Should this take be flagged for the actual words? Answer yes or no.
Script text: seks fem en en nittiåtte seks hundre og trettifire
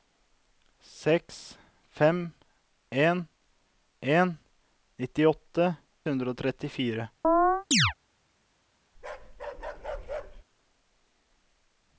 yes